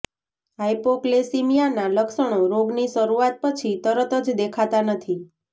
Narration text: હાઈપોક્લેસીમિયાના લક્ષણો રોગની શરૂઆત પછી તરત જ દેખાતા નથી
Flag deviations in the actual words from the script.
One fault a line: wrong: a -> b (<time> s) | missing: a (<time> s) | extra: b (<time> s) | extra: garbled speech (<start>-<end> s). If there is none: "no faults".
no faults